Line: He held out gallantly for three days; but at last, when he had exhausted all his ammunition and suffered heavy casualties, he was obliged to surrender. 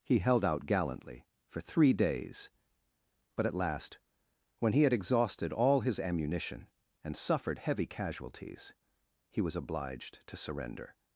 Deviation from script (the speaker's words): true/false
false